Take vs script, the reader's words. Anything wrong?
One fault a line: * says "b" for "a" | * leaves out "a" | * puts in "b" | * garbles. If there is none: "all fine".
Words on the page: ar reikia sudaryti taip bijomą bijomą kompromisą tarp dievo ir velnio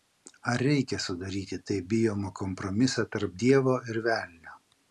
* leaves out "bijomą"